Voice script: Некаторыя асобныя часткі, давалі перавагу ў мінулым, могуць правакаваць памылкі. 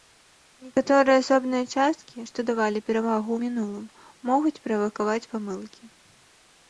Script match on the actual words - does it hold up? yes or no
no